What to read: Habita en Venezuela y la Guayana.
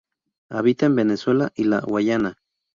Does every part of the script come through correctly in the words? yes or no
yes